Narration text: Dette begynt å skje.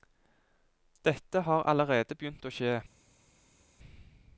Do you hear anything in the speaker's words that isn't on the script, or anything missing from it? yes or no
yes